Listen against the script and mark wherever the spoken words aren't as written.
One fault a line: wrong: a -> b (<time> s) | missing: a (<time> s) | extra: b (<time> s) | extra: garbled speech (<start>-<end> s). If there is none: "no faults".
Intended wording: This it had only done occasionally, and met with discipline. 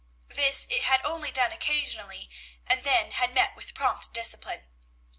extra: then had (2.9 s)
extra: prompt (3.7 s)